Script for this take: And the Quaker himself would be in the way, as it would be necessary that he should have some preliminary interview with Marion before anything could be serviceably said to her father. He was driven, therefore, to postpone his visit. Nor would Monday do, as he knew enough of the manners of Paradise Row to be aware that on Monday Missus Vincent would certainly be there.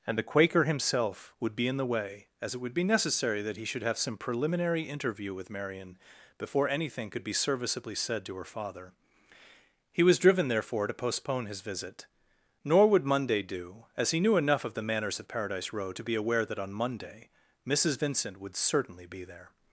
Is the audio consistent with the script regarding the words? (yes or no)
yes